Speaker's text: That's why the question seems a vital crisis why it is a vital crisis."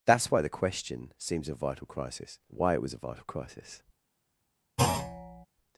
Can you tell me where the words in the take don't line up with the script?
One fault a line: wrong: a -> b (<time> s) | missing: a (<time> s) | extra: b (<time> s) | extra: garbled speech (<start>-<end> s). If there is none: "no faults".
wrong: is -> was (2.8 s)